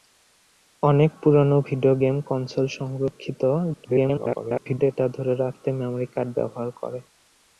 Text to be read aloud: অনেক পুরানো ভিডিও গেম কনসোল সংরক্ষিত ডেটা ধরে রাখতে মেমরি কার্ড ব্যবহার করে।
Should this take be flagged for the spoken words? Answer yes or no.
yes